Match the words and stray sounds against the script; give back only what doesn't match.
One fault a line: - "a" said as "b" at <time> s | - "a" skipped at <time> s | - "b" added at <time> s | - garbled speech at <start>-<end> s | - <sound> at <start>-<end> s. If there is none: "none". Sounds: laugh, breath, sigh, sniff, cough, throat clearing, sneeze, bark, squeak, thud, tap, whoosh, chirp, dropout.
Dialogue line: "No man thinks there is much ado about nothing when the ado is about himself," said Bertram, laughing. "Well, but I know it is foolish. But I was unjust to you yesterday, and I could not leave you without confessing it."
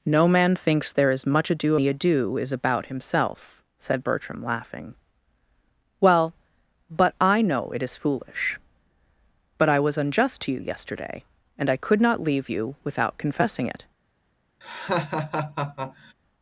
- "about nothing when" skipped at 1.8 s
- laugh at 14.6-16.1 s